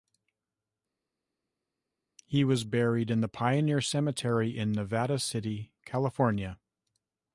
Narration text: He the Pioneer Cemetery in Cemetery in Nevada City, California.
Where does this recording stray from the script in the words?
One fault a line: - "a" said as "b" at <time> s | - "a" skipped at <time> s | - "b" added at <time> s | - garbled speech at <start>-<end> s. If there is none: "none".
- "was buried in" added at 2.4 s
- "Cemetery in" skipped at 4.7 s